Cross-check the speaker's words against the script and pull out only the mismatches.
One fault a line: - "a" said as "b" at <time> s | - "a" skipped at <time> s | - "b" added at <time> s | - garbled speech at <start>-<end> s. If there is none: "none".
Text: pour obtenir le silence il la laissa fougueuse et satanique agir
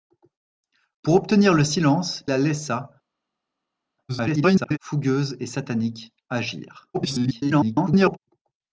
- "il" skipped at 2.2 s
- garbled speech at 4.1-4.8 s
- garbled speech at 6.9-8.2 s